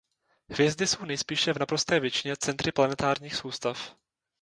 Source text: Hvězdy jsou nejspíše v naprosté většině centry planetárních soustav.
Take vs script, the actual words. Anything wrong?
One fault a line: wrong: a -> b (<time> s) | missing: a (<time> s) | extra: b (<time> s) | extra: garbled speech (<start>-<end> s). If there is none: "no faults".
no faults